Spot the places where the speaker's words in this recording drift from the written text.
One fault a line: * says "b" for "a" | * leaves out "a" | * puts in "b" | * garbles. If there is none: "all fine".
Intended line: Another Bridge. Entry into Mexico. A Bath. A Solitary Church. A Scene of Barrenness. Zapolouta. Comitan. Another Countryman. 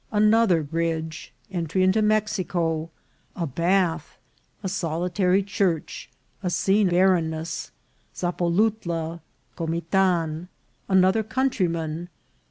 * leaves out "of"